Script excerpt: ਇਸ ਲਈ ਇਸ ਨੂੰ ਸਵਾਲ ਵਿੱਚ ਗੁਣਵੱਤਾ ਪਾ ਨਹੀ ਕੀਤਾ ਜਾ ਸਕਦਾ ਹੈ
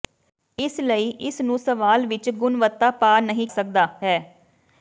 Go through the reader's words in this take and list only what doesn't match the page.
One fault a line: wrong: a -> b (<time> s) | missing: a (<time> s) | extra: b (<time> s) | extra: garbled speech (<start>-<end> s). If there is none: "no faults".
missing: ਕੀਤਾ ਜਾ (3.5 s)